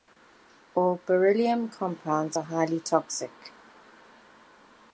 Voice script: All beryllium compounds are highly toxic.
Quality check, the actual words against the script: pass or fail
pass